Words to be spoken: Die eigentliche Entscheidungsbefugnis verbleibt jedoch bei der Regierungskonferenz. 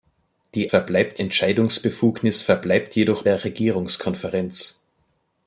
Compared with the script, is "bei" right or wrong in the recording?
wrong